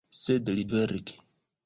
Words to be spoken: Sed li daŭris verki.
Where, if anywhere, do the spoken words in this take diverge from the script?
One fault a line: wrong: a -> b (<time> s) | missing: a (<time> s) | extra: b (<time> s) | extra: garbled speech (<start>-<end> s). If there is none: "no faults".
missing: daŭris (0.6 s)